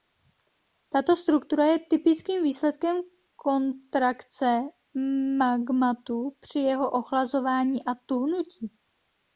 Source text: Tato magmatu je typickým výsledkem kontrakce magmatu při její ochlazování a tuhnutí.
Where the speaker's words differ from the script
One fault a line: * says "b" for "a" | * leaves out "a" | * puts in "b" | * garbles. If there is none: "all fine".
* says "struktura" for "magmatu"
* says "jeho" for "její"